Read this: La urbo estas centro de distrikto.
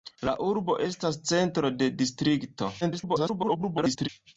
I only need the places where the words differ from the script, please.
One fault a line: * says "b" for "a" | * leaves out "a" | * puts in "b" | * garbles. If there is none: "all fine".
* garbles